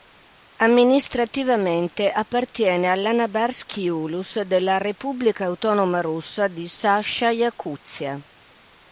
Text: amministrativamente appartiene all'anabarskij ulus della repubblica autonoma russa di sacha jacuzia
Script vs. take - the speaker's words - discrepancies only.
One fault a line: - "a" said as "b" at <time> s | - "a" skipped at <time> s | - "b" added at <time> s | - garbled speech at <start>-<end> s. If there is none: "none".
none